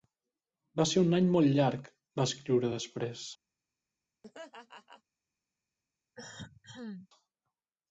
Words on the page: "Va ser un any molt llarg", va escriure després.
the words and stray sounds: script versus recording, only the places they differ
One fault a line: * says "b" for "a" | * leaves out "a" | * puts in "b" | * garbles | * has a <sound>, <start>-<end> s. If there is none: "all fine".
* has a laugh, 4.2-5.0 s
* has a cough, 6.1-7.1 s